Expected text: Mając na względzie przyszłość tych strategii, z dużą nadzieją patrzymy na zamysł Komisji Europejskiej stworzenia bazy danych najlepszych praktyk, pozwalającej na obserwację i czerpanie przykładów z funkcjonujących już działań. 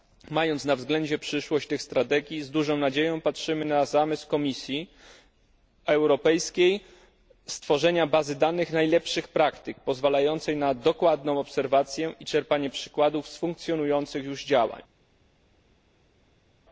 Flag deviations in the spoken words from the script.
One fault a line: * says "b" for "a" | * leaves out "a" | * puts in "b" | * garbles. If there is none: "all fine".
* puts in "dokładną"